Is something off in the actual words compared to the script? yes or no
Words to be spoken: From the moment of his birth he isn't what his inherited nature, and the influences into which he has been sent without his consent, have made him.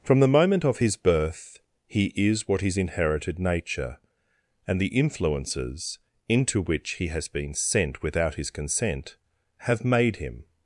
yes